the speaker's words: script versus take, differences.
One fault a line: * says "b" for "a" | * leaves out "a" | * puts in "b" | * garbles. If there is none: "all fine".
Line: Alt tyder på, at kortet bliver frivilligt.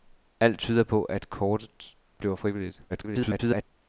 * garbles